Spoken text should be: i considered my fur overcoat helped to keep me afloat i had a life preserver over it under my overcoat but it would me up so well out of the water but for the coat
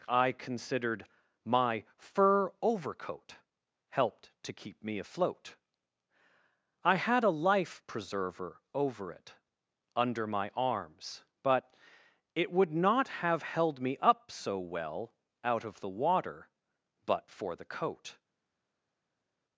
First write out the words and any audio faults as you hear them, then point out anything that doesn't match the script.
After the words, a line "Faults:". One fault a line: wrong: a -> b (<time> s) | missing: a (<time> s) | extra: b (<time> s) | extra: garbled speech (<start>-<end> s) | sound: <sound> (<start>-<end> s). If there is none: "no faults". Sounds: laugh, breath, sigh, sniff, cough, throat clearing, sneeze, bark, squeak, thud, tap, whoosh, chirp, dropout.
i considered my fur overcoat helped to keep me afloat i had a life preserver over it under my arms but it would not have held me up so well out of the water but for the coat
Faults:
wrong: overcoat -> arms (10.6 s)
extra: not have held (12.7 s)